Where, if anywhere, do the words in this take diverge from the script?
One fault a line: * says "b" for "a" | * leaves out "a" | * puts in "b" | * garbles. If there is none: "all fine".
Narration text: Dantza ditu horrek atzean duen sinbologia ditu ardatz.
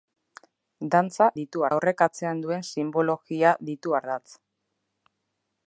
all fine